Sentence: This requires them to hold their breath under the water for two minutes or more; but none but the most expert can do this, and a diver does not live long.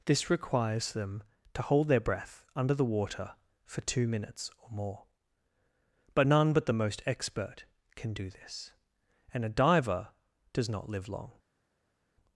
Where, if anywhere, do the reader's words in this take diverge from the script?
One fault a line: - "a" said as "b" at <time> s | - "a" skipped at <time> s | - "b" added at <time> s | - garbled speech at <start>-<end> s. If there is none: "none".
none